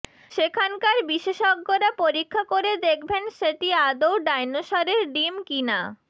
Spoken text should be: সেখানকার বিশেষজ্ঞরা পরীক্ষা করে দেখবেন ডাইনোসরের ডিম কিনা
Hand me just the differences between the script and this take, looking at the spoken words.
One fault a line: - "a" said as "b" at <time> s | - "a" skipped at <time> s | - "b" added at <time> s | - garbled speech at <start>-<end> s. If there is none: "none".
- "সেটি আদৌ" added at 3.4 s